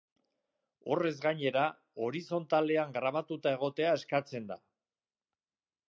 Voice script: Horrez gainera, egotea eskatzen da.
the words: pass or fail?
fail